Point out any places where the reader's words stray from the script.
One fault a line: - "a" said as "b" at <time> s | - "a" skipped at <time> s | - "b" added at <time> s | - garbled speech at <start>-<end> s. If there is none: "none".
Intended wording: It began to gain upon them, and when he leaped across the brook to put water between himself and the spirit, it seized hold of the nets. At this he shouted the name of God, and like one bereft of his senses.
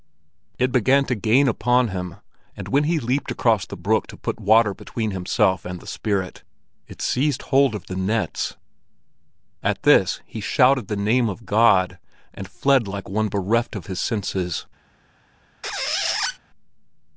- "them" said as "him" at 1.9 s
- "fled" added at 12.5 s